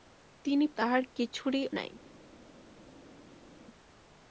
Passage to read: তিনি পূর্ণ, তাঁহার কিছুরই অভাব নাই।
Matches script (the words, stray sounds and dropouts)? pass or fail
fail